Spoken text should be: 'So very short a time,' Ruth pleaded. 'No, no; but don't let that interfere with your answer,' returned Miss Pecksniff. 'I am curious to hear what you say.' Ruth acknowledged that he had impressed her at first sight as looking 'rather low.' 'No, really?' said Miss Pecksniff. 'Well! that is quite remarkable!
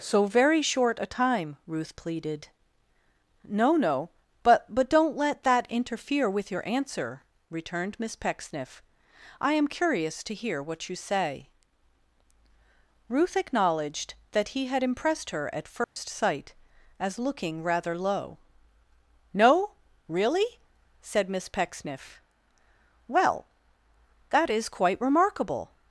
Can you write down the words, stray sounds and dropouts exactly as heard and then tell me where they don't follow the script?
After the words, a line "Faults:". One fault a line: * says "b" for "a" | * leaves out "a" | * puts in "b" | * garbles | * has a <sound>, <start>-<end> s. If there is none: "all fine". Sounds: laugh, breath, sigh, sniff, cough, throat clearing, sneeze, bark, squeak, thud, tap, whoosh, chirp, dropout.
'So very short a time,' Ruth pleaded. 'No, no; but but don't let that interfere with your answer,' returned Miss Pecksniff. 'I am curious to hear what you say.' Ruth acknowledged that he had impressed her at first sight as looking 'rather low.' 'No, really?' said Miss Pecksniff. 'Well! that is quite remarkable!
Faults:
* puts in "but"
* has a dropout, 15.8-16.0 s